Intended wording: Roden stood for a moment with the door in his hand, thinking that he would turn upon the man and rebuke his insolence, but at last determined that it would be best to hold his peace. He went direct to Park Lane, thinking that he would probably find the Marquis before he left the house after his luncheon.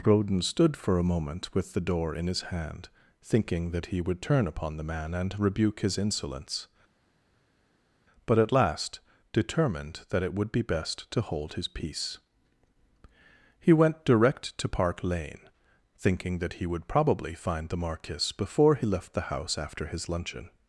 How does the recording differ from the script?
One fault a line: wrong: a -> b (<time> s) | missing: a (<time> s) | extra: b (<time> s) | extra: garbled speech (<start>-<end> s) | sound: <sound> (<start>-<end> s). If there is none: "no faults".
no faults